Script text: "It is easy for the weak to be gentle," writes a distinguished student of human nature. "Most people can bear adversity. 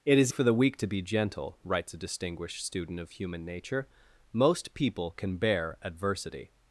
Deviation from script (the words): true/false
true